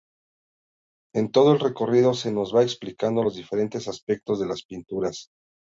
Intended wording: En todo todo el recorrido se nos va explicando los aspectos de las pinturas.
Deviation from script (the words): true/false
true